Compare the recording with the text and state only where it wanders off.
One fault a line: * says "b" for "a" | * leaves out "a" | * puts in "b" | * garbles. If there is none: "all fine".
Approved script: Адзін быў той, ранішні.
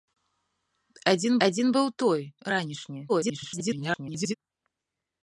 * puts in "адзін"
* garbles